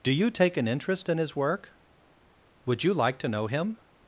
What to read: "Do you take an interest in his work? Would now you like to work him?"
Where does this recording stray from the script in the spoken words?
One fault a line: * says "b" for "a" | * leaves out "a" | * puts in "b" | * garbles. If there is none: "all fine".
* leaves out "now"
* says "know" for "work"